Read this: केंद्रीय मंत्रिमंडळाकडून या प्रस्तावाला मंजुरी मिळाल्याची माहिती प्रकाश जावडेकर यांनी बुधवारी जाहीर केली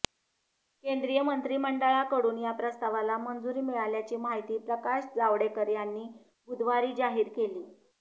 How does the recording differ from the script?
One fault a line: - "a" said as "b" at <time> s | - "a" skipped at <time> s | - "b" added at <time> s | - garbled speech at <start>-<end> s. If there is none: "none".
none